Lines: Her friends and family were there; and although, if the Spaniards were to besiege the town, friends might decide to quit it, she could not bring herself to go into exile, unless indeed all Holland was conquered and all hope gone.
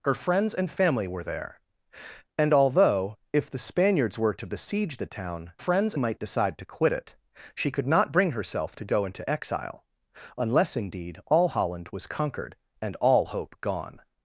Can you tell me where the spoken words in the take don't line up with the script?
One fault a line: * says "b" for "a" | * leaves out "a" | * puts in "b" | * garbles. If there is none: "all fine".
all fine